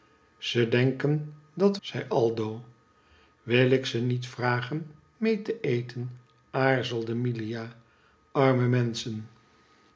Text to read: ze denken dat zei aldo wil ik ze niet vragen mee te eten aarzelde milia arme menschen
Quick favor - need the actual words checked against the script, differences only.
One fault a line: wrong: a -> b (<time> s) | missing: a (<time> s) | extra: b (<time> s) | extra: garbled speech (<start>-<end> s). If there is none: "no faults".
no faults